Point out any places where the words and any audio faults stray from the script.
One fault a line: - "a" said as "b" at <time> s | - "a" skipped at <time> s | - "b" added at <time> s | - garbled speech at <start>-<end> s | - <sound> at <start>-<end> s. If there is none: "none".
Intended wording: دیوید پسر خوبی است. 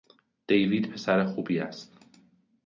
none